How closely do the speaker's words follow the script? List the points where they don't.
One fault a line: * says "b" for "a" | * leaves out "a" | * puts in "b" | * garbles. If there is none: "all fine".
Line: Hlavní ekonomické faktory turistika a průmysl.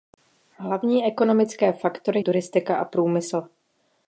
all fine